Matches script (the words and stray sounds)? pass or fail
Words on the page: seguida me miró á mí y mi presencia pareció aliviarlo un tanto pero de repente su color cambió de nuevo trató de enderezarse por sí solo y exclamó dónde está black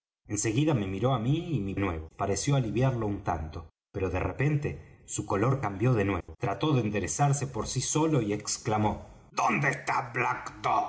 fail